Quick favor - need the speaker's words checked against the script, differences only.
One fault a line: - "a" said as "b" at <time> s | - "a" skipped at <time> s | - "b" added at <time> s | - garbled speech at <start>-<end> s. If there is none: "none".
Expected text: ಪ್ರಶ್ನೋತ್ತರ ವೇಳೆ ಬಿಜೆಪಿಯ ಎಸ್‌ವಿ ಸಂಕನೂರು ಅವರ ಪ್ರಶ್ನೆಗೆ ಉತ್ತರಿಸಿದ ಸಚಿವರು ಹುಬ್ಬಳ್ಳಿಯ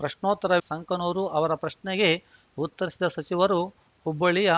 - "ವೇಳೆ ಬಿಜೆಪಿಯ ಎಸ್‌ವಿ" skipped at 0.6 s